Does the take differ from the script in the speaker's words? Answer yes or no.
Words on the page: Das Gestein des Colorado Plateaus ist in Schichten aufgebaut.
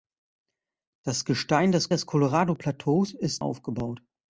yes